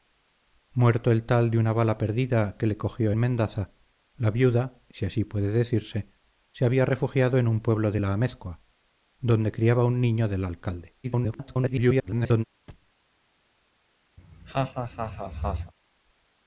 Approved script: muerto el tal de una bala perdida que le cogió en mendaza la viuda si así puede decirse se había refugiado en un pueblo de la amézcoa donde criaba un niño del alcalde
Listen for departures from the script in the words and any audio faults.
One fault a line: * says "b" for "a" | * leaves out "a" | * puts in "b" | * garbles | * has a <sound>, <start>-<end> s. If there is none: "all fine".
* leaves out "en"
* garbles
* has a thud, 12.7-12.9 s
* has a laugh, 14.2-15.7 s